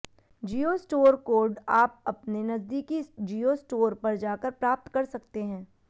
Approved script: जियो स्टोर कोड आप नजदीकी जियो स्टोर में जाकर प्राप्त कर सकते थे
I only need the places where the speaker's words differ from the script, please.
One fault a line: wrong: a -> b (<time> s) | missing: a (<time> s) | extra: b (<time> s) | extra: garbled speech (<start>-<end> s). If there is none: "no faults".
extra: अपने (2.1 s)
wrong: में -> पर (4.0 s)
wrong: थे -> हैं (5.4 s)